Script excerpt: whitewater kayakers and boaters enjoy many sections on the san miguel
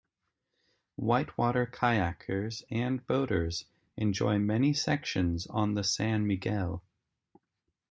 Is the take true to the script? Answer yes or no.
yes